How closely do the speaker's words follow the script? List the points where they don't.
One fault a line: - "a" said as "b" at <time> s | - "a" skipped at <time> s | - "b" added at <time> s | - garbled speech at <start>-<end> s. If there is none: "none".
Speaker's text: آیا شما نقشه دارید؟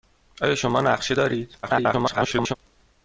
- garbled speech at 1.6-2.6 s